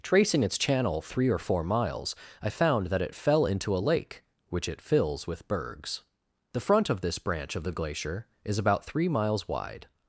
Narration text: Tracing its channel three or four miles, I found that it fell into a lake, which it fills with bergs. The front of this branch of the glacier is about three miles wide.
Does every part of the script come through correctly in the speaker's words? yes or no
yes